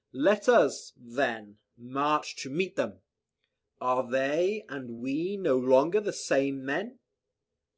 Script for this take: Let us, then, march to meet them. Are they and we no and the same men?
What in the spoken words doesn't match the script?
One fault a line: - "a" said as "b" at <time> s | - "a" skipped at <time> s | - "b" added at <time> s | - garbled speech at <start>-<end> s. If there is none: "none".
- "and" said as "longer" at 5.6 s